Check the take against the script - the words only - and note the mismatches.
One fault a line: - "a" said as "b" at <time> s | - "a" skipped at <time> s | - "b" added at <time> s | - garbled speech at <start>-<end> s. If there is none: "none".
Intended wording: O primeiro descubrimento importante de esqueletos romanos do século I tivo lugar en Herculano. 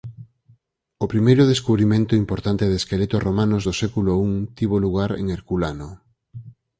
none